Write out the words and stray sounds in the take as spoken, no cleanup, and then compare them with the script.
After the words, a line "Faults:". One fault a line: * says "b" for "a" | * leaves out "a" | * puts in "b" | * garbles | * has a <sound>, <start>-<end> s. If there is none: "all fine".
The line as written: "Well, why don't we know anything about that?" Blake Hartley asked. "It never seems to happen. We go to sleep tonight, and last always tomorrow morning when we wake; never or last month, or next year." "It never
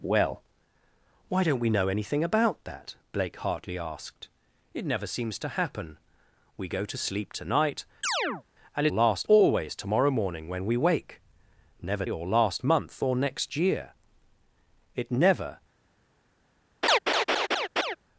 "Well, why don't we know anything about that?" Blake Hartley asked. "It never seems to happen. We go to sleep tonight, and last always tomorrow morning when we wake; never or last month, or next year." "It never
Faults:
* has a chirp, 8.0-8.4 s
* has a laugh, 16.8-18.0 s